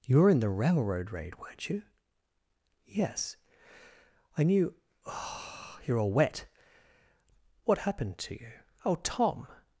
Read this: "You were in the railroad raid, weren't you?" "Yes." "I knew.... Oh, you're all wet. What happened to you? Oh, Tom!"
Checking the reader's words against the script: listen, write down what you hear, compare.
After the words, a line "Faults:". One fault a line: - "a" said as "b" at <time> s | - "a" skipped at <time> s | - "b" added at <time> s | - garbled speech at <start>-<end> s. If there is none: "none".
"You were in the railroad raid, weren't you?" "Yes." "I knew.... Oh, you're all wet. What happened to you? Oh, Tom!"
Faults:
none